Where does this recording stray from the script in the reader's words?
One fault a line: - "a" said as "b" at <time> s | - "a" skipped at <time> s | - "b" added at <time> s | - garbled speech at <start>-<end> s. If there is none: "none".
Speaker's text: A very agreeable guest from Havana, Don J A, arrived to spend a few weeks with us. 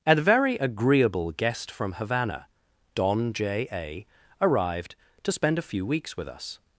none